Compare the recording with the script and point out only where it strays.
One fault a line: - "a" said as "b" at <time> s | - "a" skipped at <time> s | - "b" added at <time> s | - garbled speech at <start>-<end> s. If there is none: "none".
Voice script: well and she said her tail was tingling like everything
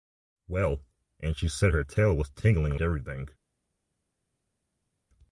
- "like" skipped at 2.8 s